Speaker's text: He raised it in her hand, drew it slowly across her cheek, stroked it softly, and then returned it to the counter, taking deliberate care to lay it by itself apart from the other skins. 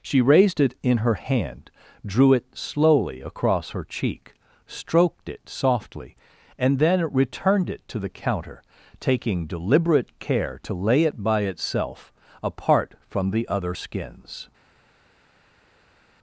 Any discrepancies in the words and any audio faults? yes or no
yes